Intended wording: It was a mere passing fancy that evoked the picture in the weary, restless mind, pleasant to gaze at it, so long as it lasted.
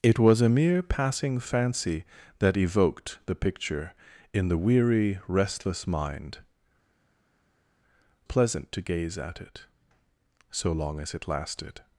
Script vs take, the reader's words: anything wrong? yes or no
no